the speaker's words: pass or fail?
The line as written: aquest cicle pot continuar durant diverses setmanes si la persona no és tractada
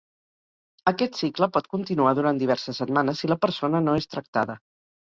pass